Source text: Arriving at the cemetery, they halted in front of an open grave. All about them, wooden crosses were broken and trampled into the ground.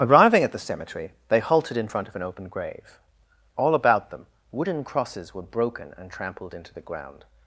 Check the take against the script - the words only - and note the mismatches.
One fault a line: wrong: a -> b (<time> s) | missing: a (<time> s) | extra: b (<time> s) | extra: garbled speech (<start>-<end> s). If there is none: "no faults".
no faults